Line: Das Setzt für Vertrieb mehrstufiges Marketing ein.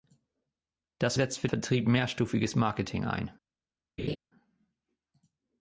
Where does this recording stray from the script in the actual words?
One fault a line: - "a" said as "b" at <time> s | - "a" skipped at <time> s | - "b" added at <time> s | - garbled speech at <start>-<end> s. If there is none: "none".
none